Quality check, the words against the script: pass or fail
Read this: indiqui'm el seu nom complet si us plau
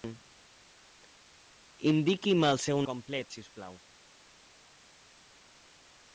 fail